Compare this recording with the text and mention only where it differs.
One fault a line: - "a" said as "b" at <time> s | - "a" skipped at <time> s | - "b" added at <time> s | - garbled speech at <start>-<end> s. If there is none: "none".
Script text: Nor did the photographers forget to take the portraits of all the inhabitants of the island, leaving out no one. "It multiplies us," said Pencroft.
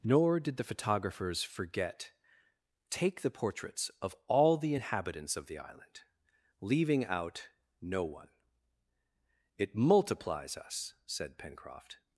- "to" skipped at 2.1 s